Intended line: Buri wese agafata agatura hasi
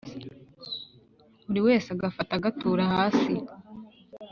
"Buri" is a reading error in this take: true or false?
false